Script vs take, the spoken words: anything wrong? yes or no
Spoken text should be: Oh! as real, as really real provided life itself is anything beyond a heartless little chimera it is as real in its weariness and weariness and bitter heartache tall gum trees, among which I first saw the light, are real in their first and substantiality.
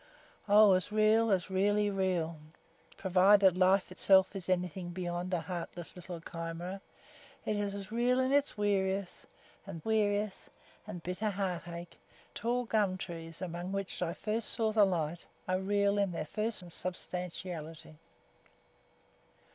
no